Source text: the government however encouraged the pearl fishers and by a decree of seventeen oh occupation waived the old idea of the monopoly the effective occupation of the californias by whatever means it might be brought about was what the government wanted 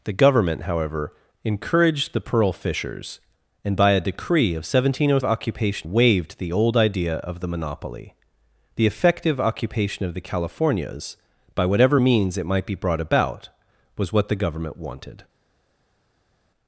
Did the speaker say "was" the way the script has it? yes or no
yes